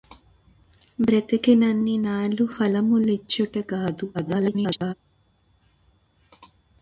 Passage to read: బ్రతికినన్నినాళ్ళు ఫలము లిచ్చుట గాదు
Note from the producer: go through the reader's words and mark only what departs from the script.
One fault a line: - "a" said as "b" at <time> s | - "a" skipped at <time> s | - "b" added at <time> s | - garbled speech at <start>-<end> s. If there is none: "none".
- garbled speech at 4.1-4.9 s